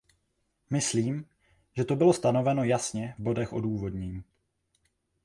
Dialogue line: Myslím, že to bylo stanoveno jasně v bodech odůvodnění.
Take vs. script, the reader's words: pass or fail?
pass